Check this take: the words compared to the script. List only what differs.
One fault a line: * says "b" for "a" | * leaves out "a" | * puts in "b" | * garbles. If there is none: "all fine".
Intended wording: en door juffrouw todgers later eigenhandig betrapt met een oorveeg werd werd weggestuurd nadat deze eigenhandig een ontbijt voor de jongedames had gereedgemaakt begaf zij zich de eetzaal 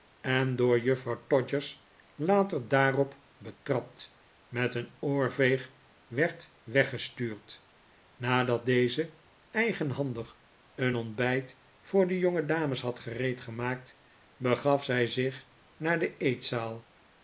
* says "daarop" for "eigenhandig"
* leaves out "werd"
* puts in "naar"